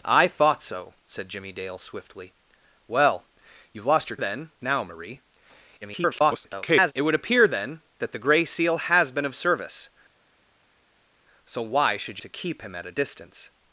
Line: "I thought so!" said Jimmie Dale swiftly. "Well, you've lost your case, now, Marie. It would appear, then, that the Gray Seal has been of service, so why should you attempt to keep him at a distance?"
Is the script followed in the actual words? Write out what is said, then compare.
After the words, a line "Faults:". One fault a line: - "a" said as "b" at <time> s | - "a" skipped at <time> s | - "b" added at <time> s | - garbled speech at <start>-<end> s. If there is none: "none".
"I thought so!" said Jimmie Dale swiftly. "Well, you've lost your then, now, Marie. [garbled] It would appear, then, that the Gray Seal has been of service, so why should to keep him at a distance?"
Faults:
- "case" said as "then" at 4.2 s
- garbled speech at 5.8-6.9 s
- "you attempt" skipped at 12.2 s